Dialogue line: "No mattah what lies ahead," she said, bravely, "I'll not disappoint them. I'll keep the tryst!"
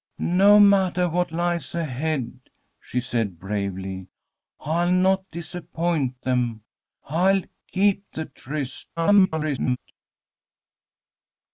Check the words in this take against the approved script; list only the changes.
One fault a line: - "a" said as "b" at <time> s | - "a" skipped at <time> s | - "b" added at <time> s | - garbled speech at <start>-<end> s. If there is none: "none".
- garbled speech at 9.0-9.8 s